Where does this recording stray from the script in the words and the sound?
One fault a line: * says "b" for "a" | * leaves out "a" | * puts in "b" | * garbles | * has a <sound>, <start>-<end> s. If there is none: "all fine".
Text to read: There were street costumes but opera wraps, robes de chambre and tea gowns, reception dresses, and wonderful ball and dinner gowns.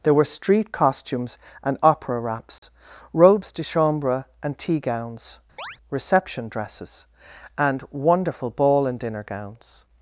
* says "and" for "but"
* has a dropout, 2.6-2.6 s
* has a chirp, 5.6-5.8 s